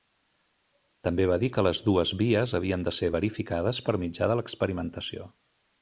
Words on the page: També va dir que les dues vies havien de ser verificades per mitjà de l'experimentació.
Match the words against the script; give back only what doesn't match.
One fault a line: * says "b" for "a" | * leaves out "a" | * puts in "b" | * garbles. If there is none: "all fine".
all fine